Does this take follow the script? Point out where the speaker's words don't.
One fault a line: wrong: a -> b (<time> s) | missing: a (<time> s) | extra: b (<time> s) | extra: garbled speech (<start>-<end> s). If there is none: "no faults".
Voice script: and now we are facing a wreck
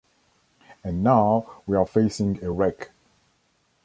no faults